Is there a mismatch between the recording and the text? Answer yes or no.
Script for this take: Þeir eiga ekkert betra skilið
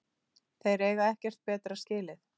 no